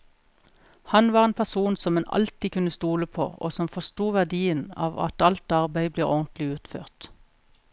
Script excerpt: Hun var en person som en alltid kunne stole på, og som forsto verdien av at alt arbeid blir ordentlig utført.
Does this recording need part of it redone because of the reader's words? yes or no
yes